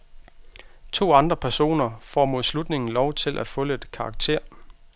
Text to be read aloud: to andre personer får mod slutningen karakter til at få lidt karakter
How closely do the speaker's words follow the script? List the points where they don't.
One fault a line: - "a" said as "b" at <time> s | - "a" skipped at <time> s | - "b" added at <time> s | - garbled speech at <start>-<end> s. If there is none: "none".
- "karakter" said as "lov" at 2.9 s